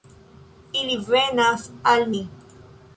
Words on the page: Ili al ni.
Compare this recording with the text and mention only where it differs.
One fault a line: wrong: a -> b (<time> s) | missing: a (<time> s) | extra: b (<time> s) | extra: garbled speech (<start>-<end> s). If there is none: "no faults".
extra: venas (1.1 s)